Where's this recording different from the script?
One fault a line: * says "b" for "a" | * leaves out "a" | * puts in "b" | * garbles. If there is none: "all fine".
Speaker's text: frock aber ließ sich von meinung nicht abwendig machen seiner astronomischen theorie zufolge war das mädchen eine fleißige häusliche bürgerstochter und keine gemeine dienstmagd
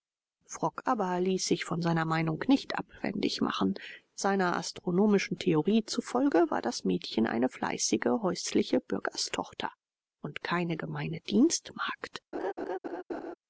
* puts in "seiner"